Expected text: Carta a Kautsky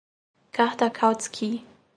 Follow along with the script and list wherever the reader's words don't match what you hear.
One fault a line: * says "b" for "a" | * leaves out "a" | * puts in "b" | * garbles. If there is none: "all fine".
all fine